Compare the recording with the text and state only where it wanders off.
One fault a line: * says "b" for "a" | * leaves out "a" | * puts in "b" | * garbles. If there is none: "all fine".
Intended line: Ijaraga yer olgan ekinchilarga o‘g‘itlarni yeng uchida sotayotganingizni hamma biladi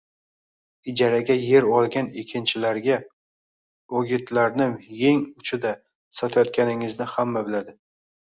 all fine